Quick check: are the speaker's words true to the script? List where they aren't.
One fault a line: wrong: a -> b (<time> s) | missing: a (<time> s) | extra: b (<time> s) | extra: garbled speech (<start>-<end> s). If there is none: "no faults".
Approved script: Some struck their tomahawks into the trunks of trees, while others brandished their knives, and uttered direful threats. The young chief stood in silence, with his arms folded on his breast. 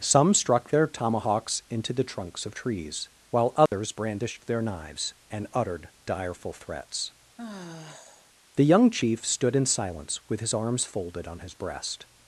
no faults